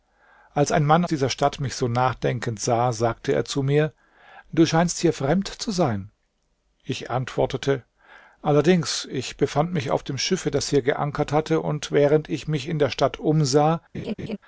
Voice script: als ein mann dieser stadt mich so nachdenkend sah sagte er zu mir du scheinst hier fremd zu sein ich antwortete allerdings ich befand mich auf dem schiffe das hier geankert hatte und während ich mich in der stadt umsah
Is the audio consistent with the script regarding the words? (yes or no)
yes